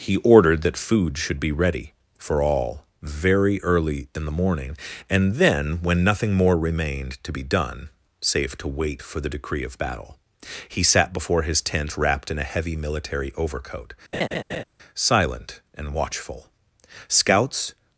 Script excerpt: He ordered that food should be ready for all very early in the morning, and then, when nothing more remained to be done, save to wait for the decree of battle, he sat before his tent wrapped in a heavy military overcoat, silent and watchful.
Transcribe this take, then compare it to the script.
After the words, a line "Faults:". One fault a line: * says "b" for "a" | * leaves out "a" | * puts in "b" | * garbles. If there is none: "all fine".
He ordered that food should be ready for all very early in the morning, and then, when nothing more remained to be done, save to wait for the decree of battle, he sat before his tent wrapped in a heavy military overcoat, silent and watchful. Scouts
Faults:
* puts in "Scouts"